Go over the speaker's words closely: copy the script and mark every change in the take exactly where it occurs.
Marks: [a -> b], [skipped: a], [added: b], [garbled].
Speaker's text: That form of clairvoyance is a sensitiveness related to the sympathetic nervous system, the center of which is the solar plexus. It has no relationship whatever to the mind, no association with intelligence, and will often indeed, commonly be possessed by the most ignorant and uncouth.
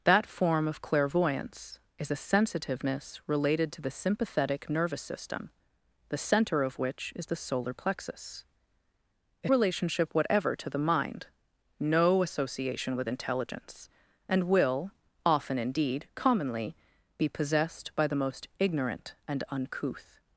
That form of clairvoyance is a sensitiveness related to the sympathetic nervous system, the center of which is the solar plexus. It [skipped: has no] relationship whatever to the mind, no association with intelligence, and will often indeed, commonly be possessed by the most ignorant and uncouth.